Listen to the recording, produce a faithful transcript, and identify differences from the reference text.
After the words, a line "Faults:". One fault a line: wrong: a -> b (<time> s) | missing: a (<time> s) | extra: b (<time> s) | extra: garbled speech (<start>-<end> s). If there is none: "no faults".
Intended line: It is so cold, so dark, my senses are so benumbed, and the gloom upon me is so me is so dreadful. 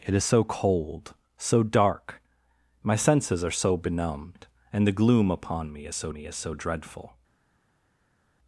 It is so cold, so dark, my senses are so benumbed, and the gloom upon me is so me is so dreadful.
Faults:
no faults